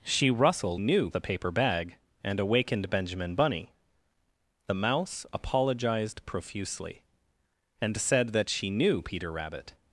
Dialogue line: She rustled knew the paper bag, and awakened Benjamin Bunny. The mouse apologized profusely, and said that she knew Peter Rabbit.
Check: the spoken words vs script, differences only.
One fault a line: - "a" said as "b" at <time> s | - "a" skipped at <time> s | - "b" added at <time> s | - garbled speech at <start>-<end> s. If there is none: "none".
none